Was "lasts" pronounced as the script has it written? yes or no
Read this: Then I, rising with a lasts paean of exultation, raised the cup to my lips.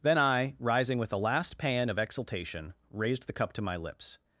no